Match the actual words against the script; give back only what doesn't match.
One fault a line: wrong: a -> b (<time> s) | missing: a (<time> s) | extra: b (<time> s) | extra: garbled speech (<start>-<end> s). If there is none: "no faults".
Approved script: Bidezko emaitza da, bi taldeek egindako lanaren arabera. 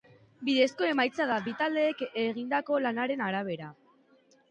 no faults